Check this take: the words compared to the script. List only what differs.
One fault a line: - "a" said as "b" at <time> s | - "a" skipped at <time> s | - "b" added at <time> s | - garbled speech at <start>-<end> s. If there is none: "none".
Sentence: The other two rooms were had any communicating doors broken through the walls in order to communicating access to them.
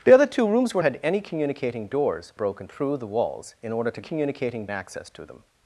none